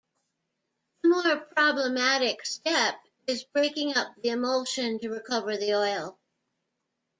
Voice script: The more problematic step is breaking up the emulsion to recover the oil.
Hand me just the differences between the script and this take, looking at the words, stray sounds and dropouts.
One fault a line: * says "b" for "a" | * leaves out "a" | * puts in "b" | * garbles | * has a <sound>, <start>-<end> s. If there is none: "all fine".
all fine